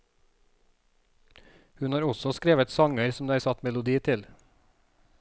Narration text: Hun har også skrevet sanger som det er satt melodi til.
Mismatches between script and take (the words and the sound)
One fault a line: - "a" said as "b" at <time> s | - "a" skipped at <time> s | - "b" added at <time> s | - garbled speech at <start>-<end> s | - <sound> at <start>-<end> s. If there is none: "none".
none